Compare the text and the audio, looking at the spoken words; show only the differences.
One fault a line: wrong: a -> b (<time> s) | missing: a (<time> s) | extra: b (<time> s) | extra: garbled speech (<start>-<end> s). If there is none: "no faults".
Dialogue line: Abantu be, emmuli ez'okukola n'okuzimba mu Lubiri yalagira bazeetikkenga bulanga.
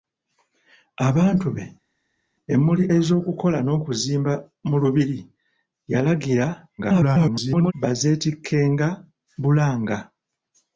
extra: garbled speech (6.8-7.7 s)